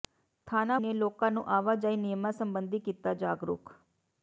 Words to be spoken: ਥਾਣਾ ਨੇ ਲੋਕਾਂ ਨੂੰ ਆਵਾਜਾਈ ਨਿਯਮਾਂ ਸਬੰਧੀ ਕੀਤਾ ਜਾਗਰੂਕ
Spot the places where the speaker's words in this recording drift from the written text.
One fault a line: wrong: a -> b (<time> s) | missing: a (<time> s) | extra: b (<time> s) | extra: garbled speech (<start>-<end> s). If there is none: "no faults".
no faults